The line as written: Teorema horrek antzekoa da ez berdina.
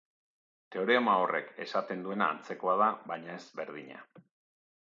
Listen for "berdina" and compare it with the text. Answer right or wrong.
right